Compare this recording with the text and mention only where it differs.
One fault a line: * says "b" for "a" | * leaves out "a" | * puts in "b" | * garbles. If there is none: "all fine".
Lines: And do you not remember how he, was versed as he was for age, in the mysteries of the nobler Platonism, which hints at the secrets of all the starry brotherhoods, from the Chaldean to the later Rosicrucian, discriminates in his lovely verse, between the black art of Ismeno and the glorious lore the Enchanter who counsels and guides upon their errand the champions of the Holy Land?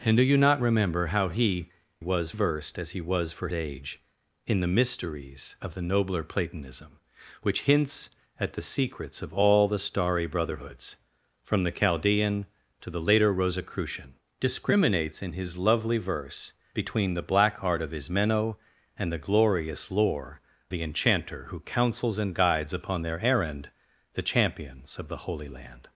all fine